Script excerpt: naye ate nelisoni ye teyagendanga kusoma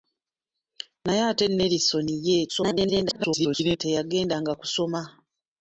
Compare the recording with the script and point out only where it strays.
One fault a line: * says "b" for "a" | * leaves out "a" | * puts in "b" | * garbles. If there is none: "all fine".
* garbles